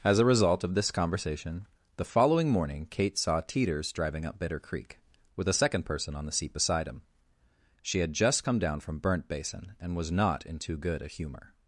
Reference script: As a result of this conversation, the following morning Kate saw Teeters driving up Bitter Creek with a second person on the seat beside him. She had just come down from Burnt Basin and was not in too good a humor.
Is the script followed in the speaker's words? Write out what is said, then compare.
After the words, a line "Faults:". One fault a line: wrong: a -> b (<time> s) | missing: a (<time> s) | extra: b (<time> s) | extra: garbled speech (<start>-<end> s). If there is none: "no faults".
As a result of this conversation, the following morning Kate saw Teeters driving up Bitter Creek with a second person on the seat beside him. She had just come down from Burnt Basin and was not in too good a humor.
Faults:
no faults